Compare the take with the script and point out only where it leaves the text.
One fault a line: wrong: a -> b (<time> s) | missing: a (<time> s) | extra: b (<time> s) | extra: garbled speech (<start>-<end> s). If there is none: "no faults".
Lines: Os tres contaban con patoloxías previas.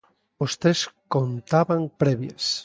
missing: con patoloxías (1.8 s)